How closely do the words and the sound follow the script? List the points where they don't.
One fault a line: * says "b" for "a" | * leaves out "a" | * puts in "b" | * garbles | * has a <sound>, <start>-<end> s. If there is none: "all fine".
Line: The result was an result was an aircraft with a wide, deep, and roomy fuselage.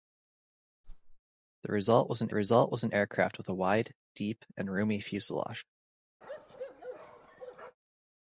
* has a whoosh, 0.8-1.2 s
* has a bark, 6.2-7.8 s